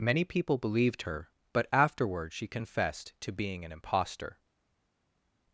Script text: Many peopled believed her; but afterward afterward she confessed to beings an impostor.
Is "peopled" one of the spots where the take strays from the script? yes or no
yes